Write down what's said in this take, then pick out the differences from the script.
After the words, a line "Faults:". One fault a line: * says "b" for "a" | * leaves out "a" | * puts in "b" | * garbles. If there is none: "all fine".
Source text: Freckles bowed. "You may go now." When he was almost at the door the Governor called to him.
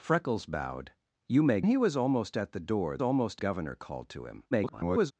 Freckles bowed. "You may he was almost at the door almost Governor called to him. [garbled]
Faults:
* leaves out "go now When"
* says "almost" for "the"
* garbles